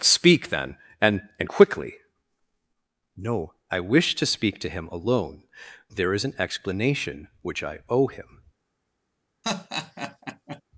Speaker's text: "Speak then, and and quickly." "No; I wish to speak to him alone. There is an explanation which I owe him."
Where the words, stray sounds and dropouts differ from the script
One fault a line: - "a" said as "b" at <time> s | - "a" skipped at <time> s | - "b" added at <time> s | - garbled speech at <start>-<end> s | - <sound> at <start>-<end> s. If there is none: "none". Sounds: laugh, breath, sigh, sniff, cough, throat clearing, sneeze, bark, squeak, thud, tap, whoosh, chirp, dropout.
- laugh at 9.4-10.6 s